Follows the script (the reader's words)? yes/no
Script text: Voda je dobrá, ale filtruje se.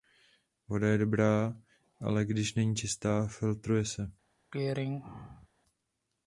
no